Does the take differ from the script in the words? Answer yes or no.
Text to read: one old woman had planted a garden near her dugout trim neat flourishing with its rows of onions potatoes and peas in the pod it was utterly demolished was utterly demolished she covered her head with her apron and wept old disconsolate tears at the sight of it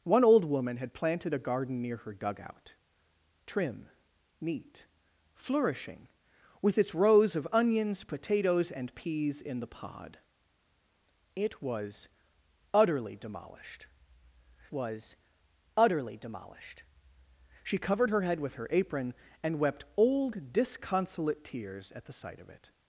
no